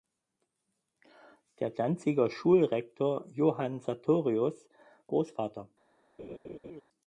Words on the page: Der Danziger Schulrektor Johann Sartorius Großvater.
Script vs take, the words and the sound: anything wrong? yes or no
yes